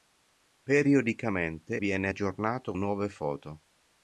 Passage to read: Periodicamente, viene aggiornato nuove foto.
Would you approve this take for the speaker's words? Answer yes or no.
yes